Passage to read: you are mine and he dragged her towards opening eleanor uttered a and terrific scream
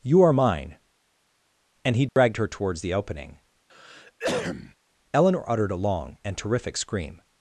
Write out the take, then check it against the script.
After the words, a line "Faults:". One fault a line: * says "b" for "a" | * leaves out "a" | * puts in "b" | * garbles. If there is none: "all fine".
you are mine and he dragged her towards the opening eleanor uttered a long and terrific scream
Faults:
* puts in "the"
* puts in "long"